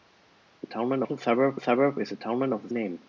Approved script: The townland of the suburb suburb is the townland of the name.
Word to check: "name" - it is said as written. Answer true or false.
true